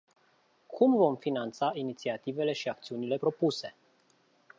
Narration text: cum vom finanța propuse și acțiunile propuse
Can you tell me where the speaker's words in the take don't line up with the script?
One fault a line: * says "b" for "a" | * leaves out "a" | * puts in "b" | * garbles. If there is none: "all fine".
* says "inițiativele" for "propuse"